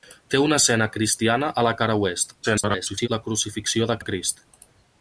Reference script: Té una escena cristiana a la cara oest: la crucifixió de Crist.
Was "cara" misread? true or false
false